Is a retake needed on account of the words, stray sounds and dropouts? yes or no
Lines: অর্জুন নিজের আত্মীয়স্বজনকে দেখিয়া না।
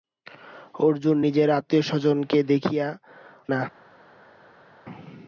no